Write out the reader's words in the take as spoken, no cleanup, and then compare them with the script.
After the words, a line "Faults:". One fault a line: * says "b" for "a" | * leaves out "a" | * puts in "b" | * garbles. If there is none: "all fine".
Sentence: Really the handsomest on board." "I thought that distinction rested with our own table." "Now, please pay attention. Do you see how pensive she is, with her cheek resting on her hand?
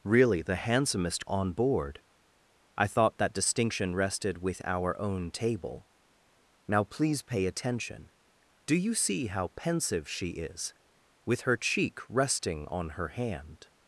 Really the handsomest on board." "I thought that distinction rested with our own table." "Now, please pay attention. Do you see how pensive she is, with her cheek resting on her hand?
Faults:
all fine